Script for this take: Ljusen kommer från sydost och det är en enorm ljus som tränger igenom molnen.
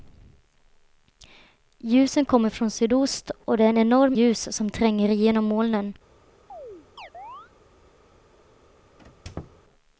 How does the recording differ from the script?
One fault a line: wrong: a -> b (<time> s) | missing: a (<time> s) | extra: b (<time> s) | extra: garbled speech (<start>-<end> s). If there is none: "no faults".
no faults